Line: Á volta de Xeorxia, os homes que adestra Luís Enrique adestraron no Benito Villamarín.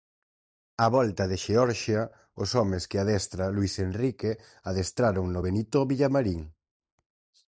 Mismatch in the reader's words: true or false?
false